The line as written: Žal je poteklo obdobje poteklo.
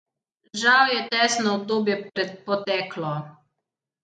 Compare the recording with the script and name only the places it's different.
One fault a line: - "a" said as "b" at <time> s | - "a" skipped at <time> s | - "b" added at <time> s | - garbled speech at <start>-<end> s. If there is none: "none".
- "poteklo" said as "testno" at 1.1 s